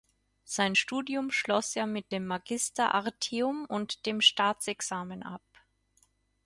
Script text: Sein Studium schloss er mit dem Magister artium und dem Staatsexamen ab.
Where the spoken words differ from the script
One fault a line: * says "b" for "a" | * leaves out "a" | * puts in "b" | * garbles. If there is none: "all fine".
all fine